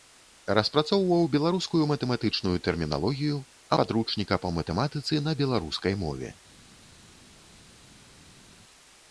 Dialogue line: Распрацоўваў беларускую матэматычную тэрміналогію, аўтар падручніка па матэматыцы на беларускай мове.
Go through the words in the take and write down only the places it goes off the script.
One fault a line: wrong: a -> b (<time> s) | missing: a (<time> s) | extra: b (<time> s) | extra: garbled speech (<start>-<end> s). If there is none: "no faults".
missing: аўтар (3.4 s)